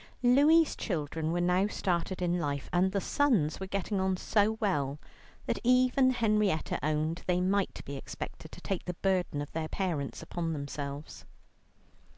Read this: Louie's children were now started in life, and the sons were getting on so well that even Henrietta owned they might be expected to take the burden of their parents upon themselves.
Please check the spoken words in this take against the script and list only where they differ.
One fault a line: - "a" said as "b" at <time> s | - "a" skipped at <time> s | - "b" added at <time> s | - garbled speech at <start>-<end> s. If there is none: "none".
none